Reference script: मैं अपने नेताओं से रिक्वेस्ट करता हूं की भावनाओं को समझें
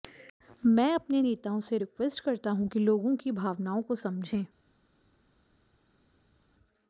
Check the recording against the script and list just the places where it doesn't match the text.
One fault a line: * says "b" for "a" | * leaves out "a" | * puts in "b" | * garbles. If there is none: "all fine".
* puts in "कि लोगों"